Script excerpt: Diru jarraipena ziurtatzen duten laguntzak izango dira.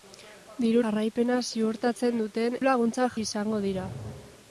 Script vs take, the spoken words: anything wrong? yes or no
no